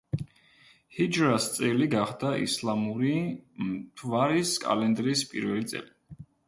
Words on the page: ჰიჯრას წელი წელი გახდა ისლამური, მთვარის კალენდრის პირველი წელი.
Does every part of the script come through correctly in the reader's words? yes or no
no